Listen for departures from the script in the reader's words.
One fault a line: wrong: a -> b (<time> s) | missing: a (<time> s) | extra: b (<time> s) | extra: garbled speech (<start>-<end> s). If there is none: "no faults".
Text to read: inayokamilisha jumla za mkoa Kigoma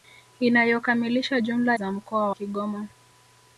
no faults